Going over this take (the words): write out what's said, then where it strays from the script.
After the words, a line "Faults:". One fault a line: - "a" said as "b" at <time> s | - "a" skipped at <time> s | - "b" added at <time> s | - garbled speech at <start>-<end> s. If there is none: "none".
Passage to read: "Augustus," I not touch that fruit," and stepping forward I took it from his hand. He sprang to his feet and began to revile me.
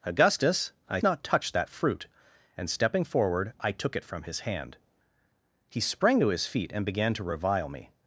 "Augustus," I not touch that fruit," and stepping forward I took it from his hand. He sprang to his feet and began to revile me.
Faults:
none